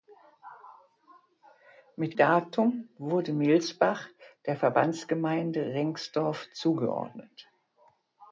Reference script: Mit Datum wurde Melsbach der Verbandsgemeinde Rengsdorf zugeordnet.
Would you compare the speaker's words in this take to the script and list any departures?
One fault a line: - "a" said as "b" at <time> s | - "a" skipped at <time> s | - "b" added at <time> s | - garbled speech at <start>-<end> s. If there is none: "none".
none